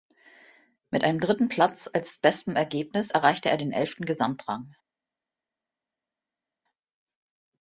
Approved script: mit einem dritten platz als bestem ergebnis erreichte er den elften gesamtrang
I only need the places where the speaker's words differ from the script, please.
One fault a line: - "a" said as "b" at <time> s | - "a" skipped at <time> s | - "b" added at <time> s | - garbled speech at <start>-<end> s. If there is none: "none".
none